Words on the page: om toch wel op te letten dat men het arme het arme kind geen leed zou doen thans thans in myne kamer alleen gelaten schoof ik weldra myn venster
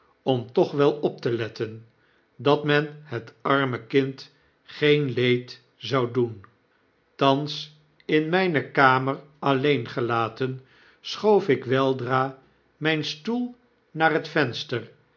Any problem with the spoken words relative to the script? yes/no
yes